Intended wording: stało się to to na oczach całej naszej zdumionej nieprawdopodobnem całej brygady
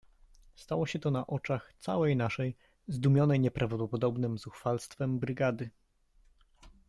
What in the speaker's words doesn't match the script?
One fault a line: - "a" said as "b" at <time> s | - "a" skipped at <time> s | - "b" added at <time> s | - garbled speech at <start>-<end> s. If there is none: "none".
- "to" skipped at 1.1 s
- "całej" said as "zuchwalstwem" at 4.4 s